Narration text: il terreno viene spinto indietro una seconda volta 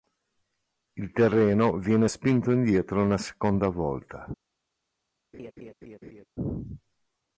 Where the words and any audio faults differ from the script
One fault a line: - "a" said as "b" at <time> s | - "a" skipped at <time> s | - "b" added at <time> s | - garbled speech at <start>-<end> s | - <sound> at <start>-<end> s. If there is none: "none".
- laugh at 5.3-6.3 s